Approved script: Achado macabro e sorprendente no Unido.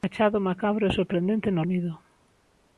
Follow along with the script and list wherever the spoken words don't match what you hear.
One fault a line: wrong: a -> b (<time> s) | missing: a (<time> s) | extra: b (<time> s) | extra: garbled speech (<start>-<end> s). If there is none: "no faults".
no faults